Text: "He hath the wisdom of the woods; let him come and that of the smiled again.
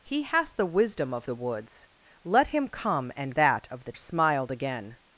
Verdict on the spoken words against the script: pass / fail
pass